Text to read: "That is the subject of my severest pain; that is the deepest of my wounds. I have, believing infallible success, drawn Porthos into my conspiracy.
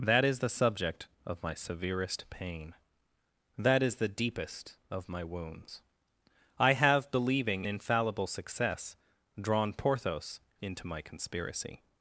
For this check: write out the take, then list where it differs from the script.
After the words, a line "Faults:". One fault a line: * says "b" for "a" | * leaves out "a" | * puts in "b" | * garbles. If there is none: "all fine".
"That is the subject of my severest pain; that is the deepest of my wounds. I have, believing infallible success, drawn Porthos into my conspiracy.
Faults:
all fine